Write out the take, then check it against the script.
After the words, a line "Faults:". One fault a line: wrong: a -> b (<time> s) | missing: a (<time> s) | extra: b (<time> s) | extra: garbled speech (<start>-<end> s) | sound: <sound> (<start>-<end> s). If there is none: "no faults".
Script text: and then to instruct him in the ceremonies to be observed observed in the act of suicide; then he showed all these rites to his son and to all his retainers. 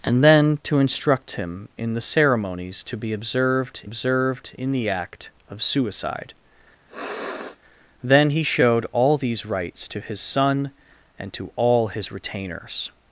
and then to instruct him in the ceremonies to be observed observed in the act of suicide; then he showed all these rites to his son and to all his retainers.
Faults:
sound: sniff (6.9-7.6 s)